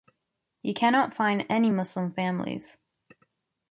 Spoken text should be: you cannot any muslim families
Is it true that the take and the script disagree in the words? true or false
true